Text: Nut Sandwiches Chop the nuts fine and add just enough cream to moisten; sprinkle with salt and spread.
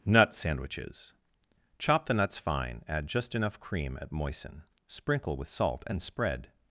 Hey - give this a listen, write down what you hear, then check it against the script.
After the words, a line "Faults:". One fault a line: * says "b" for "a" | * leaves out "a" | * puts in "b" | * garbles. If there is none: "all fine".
Nut Sandwiches Chop the nuts fine add just enough cream at moisten; sprinkle with salt and spread.
Faults:
* leaves out "and"
* says "at" for "to"